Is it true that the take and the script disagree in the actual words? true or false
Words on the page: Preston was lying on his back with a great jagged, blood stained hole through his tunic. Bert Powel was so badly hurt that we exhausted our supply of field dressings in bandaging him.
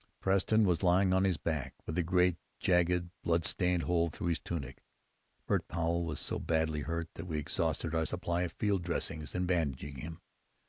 false